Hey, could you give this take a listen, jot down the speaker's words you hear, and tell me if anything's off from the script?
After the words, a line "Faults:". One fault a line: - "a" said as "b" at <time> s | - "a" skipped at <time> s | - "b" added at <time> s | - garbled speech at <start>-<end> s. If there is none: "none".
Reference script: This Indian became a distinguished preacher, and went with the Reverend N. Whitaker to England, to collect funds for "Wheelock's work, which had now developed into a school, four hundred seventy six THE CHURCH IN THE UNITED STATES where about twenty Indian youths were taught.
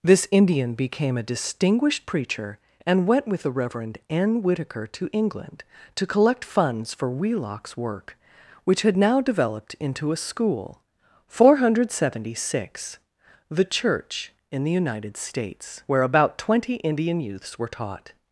This Indian became a distinguished preacher, and went with the Reverend N. Whitaker to England, to collect funds for "Wheelock's work, which had now developed into a school, four hundred seventy six THE CHURCH IN THE UNITED STATES where about twenty Indian youths were taught.
Faults:
none